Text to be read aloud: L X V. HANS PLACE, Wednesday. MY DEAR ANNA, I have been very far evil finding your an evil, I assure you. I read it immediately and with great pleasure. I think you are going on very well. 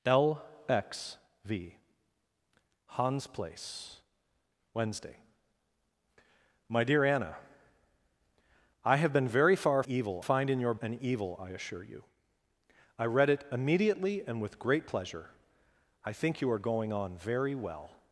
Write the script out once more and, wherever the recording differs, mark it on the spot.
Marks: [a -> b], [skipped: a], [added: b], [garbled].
L X V. HANS PLACE, Wednesday. MY DEAR ANNA, I have been very far evil finding your an evil, I assure you. I read it immediately and with great pleasure. I think you are going on very well.